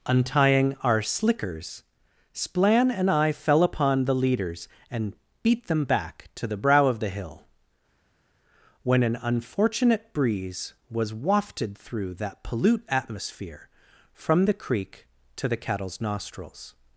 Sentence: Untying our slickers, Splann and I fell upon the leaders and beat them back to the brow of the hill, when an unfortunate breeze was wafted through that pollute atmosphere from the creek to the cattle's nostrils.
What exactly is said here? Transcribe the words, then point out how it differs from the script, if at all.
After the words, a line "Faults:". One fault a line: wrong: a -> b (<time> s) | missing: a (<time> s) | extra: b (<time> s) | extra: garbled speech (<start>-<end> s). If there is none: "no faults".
Untying our slickers, Splann and I fell upon the leaders and beat them back to the brow of the hill, when an unfortunate breeze was wafted through that pollute atmosphere from the creek to the cattle's nostrils.
Faults:
no faults